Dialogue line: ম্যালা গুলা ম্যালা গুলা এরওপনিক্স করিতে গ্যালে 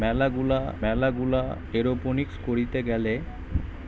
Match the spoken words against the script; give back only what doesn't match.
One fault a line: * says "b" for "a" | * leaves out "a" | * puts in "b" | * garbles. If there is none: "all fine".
all fine